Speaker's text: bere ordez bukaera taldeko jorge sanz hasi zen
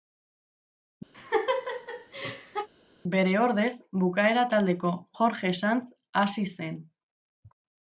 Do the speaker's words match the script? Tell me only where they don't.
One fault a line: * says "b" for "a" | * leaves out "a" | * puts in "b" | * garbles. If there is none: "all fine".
all fine